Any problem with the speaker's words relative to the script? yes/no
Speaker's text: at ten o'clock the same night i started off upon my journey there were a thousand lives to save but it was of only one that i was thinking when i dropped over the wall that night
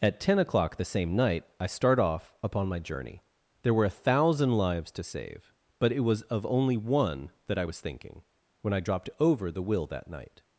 yes